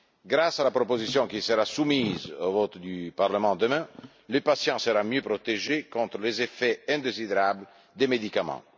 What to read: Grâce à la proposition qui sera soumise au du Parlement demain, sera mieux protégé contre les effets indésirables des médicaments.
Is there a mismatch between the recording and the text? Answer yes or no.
yes